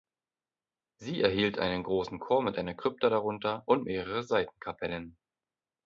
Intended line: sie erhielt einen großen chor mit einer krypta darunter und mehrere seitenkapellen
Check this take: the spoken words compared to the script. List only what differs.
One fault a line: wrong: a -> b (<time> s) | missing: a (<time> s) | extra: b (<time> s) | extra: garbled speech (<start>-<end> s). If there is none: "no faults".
no faults